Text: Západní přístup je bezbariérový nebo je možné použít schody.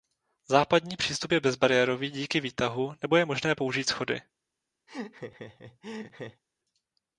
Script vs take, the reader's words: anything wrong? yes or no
yes